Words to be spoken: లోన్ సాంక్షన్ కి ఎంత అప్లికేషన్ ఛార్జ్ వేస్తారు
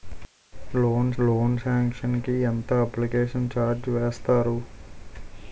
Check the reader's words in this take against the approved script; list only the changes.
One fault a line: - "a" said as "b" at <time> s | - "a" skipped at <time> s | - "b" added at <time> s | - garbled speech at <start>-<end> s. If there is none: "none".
- "లోన్" added at 1.2 s